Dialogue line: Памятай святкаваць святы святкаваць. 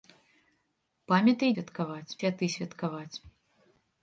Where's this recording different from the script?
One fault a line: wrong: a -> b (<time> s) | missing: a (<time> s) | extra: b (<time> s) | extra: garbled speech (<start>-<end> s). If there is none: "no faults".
no faults